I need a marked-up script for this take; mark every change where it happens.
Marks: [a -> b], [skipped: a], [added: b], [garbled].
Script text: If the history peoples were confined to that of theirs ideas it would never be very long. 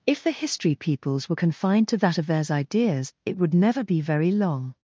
If the history peoples were confined to that of theirs ideas it would never be very long.